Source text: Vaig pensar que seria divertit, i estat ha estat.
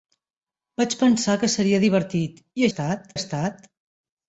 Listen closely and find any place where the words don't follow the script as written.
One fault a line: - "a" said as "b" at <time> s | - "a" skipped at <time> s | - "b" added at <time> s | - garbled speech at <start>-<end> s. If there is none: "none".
none